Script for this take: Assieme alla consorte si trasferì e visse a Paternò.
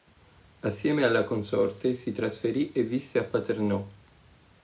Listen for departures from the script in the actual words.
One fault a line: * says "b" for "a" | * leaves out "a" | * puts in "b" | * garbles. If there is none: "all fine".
all fine